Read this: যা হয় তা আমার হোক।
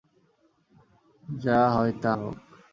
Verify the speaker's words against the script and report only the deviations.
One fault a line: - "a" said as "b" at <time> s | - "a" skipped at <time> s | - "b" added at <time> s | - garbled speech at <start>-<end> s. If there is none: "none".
- "আমার" skipped at 2.1 s